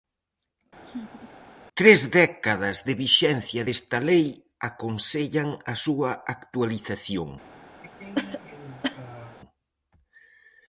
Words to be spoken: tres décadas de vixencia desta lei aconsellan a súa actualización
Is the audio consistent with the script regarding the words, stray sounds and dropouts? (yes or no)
no